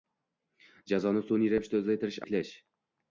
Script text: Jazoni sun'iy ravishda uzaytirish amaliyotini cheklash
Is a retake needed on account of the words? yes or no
yes